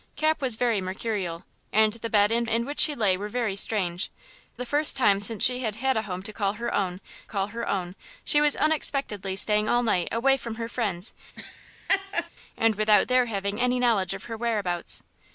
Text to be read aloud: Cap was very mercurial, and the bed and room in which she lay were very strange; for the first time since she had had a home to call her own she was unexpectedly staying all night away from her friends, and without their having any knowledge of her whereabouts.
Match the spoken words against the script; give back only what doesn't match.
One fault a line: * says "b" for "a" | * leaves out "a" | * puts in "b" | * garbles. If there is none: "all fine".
* leaves out "room"
* leaves out "for"
* puts in "call her own"